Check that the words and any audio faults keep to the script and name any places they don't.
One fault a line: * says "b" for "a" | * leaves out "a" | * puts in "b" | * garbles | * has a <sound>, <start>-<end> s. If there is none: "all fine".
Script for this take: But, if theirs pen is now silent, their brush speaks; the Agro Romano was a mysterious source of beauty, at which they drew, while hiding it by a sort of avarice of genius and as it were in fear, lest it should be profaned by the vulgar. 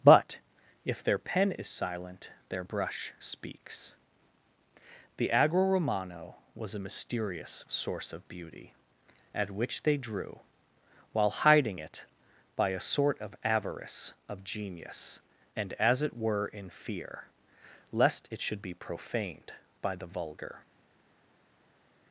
* says "their" for "theirs"
* leaves out "now"